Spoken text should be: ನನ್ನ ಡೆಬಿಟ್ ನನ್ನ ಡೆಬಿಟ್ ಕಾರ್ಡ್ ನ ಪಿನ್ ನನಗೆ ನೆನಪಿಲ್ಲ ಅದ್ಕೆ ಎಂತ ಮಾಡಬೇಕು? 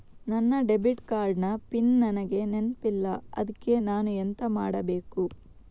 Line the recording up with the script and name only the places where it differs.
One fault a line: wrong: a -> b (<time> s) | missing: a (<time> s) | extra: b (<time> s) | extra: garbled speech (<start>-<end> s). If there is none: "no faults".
missing: ನನ್ನ ಡೆಬಿಟ್ (1.0 s)
extra: ನಾನು (3.8 s)